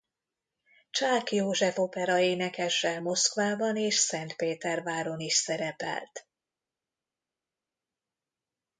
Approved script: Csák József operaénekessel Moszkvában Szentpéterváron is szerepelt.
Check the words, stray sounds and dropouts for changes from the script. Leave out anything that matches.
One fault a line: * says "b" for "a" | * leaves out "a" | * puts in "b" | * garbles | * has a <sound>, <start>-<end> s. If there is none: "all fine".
* puts in "és"